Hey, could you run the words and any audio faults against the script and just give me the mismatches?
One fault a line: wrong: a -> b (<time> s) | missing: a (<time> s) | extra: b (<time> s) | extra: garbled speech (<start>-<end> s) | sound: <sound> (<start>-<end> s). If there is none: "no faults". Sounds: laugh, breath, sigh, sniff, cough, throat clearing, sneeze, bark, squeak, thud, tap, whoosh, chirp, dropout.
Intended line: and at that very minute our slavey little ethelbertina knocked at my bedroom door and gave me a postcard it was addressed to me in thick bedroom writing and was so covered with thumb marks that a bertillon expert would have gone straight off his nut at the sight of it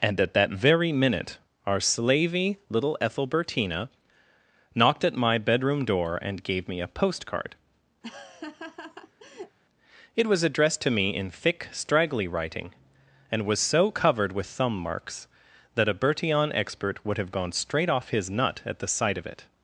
sound: laugh (8.0-9.6 s)
wrong: bedroom -> straggly (11.7 s)